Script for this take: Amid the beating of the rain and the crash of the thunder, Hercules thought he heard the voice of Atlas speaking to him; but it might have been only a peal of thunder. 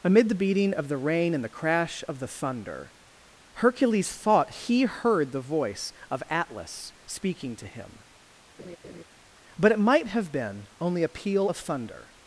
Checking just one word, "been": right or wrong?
right